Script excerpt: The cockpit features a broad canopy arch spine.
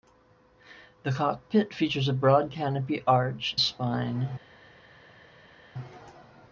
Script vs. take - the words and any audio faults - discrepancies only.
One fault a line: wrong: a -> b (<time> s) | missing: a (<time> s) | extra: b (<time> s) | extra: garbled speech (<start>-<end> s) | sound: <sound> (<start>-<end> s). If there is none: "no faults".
no faults